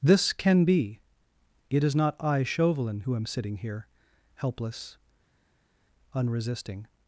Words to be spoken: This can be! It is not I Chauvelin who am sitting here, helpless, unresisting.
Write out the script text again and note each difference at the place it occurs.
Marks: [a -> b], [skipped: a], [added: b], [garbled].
This can be! It is not I Chauvelin who am sitting here, helpless, unresisting.